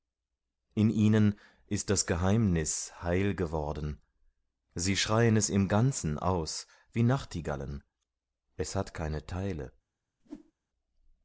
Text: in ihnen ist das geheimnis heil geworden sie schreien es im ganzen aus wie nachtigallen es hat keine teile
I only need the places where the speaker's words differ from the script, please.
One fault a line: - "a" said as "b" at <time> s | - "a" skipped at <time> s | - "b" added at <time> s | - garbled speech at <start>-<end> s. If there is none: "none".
none